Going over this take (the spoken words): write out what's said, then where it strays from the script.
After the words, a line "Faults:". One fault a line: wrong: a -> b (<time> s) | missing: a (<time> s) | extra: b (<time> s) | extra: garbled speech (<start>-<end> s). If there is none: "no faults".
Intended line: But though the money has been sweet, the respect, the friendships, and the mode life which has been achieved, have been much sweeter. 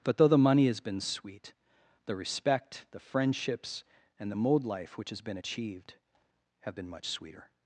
But though the money has been sweet, the respect, the friendships, and the mode life which has been achieved, have been much sweeter.
Faults:
no faults